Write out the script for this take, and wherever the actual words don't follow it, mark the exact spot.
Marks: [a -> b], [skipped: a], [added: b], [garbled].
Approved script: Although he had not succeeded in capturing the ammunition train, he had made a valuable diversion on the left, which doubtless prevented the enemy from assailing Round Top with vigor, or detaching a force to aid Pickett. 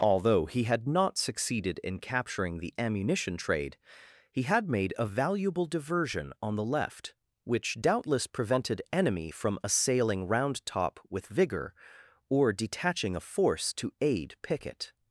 Although he had not succeeded in capturing the ammunition [train, -> trade] he had made a valuable diversion on the left, which doubtless prevented [skipped: the] enemy from assailing Round Top with vigor, or detaching a force to aid Pickett.